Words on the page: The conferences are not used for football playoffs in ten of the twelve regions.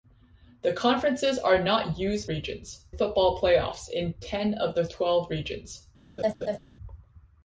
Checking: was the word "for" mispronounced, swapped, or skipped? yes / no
yes